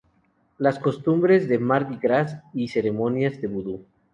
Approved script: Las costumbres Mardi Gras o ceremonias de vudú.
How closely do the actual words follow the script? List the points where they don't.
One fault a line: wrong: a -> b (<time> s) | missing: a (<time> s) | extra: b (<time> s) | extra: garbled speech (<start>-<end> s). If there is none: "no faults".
extra: de (1.5 s)
wrong: o -> y (2.5 s)